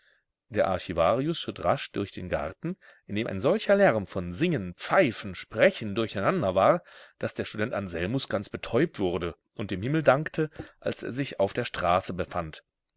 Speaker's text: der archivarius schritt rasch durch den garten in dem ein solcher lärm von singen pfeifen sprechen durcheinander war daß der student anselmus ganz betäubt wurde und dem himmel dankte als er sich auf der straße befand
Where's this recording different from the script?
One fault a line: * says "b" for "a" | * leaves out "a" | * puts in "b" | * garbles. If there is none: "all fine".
all fine